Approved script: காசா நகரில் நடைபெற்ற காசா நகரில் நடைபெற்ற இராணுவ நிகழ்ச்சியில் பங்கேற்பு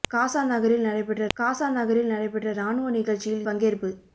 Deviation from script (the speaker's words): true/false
false